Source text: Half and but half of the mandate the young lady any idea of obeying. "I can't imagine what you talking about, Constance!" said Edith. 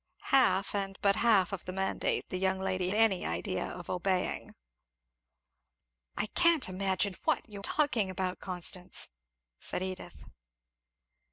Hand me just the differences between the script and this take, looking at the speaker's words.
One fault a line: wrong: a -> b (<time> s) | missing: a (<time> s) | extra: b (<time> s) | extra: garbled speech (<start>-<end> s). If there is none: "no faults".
no faults